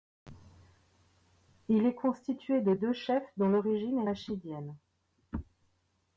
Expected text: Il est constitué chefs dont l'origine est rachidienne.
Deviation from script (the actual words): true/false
true